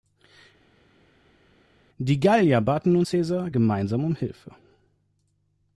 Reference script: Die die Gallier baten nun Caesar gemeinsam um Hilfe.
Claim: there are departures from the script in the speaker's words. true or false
true